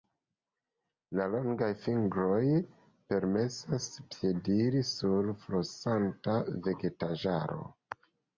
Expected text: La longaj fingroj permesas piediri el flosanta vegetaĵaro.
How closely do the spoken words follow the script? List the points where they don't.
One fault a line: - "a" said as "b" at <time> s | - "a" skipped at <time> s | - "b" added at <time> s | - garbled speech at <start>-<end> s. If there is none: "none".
- "el" said as "sur" at 4.9 s